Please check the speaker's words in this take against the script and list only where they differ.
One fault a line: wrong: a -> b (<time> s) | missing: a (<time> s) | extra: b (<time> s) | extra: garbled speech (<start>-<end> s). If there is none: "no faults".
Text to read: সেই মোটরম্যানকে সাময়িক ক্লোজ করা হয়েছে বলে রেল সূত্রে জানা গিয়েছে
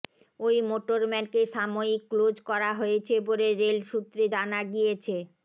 wrong: সেই -> ওই (0.4 s)